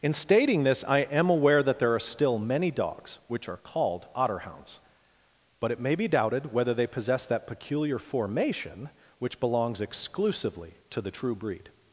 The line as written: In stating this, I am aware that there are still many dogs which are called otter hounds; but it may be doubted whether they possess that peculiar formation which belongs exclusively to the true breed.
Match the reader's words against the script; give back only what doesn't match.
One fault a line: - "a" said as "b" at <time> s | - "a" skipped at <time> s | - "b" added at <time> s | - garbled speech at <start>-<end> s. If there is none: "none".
none